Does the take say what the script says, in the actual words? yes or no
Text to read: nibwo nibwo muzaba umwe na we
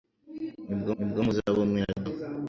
yes